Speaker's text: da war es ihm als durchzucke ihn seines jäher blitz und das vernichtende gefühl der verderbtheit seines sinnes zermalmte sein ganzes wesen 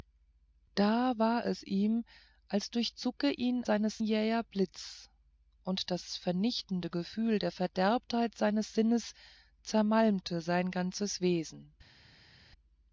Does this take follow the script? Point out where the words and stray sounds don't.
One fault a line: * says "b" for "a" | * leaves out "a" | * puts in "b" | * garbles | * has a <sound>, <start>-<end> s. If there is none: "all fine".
all fine